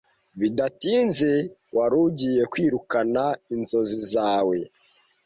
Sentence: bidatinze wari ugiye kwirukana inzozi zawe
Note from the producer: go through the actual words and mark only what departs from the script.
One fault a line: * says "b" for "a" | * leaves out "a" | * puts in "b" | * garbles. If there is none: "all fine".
all fine